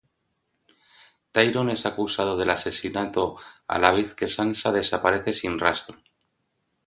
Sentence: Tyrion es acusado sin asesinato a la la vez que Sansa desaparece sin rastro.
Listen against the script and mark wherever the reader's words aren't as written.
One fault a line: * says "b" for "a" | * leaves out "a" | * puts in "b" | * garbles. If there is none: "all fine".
* says "del" for "sin"
* leaves out "la"